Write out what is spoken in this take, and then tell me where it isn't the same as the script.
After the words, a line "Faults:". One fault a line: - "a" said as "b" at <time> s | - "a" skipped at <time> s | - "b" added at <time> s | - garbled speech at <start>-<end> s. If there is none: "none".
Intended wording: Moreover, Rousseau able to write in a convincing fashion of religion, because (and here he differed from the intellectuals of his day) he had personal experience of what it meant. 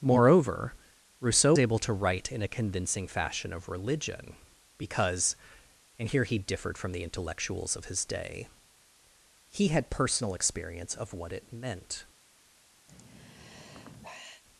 Moreover, Rousseau able to write in a convincing fashion of religion, because (and here he differed from the intellectuals of his day) he had personal experience of what it meant.
Faults:
none